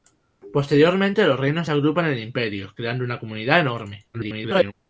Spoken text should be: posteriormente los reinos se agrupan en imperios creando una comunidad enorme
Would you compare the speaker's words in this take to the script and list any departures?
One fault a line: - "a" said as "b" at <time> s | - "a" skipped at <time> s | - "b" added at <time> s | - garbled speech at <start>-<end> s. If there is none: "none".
- garbled speech at 4.1-4.7 s